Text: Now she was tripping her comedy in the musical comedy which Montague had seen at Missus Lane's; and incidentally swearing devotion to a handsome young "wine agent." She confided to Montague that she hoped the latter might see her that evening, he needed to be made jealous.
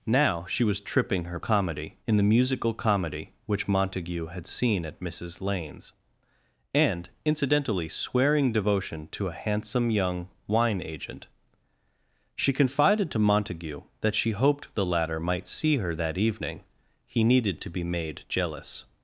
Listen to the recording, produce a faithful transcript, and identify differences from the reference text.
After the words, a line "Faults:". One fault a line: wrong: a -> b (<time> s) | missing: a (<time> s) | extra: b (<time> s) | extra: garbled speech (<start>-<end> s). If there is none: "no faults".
Now she was tripping her comedy in the musical comedy which Montague had seen at Missus Lane's; and incidentally swearing devotion to a handsome young "wine agent." She confided to Montague that she hoped the latter might see her that evening, he needed to be made jealous.
Faults:
no faults